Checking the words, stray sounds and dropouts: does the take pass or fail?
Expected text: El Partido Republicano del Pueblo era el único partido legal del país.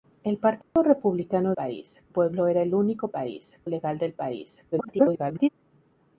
fail